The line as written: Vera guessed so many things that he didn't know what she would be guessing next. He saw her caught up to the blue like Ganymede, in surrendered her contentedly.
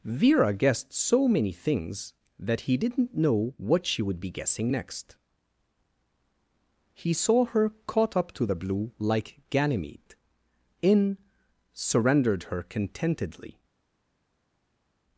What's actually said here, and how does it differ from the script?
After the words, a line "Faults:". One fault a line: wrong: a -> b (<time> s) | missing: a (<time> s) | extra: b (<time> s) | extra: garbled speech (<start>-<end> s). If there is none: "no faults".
Vera guessed so many things that he didn't know what she would be guessing next. He saw her caught up to the blue like Ganymede, in surrendered her contentedly.
Faults:
no faults